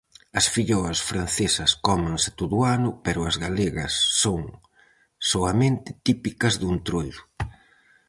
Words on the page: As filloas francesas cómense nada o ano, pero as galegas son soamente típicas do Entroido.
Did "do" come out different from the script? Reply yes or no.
no